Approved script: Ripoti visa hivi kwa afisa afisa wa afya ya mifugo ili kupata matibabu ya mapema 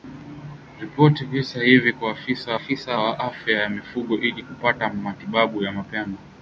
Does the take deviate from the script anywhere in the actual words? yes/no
no